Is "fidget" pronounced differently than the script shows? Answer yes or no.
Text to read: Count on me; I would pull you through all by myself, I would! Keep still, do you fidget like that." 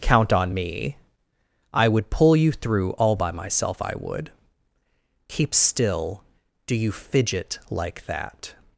no